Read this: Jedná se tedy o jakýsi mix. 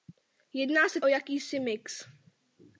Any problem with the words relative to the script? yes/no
yes